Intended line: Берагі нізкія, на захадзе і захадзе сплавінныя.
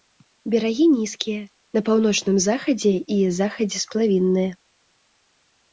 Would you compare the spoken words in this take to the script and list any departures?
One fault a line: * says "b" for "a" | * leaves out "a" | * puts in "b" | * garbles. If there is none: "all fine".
* puts in "паўночным"